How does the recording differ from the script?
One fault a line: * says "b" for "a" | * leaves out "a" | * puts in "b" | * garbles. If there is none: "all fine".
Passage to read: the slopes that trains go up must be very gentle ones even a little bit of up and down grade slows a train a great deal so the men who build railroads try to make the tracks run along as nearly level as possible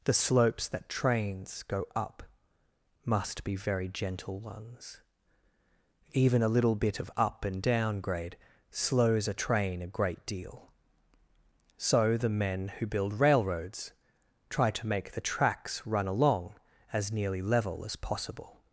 all fine